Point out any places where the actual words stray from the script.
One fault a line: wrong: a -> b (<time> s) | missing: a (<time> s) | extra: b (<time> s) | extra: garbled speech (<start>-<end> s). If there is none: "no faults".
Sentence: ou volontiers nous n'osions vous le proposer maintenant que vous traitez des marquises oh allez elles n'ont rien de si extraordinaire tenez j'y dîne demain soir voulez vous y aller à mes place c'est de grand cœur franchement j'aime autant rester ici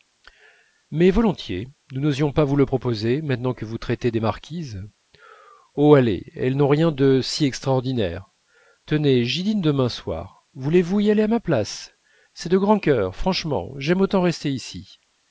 wrong: ou -> mais (0.9 s)
extra: pas (2.3 s)
wrong: mes -> ma (11.3 s)